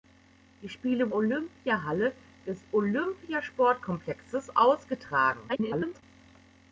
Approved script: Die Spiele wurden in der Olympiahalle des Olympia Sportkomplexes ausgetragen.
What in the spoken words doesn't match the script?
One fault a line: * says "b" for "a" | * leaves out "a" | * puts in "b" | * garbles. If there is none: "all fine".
* leaves out "wurden in der"
* garbles